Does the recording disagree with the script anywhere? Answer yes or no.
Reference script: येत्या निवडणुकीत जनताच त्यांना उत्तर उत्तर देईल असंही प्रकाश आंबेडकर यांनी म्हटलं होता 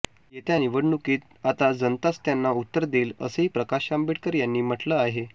yes